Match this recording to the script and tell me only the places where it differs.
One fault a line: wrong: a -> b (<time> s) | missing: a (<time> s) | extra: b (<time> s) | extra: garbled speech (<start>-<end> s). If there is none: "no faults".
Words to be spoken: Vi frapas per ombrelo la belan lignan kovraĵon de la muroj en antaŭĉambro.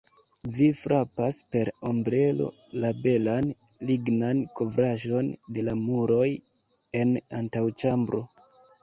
no faults